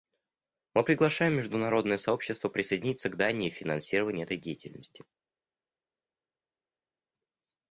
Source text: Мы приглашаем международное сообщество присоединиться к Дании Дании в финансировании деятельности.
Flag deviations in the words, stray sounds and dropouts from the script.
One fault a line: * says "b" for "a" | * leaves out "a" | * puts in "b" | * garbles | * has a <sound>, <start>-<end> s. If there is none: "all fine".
* leaves out "Дании"
* puts in "этой"